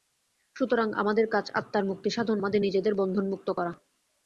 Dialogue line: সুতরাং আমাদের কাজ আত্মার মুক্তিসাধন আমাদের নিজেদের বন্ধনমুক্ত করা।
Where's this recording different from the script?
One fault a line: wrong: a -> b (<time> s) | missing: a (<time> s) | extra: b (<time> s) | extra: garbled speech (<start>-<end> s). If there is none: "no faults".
no faults